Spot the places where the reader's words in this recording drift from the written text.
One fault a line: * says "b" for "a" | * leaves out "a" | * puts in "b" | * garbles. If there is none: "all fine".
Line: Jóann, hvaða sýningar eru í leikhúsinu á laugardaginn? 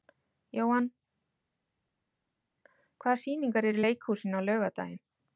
all fine